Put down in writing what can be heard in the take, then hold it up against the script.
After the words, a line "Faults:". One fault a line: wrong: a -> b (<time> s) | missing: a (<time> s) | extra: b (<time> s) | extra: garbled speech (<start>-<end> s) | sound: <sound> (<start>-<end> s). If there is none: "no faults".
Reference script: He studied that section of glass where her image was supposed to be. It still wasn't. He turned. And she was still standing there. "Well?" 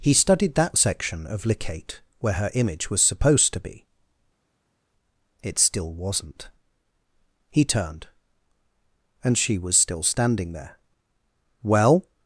He studied that section of licate where her image was supposed to be. It still wasn't. He turned. And she was still standing there. "Well?"
Faults:
wrong: glass -> licate (1.4 s)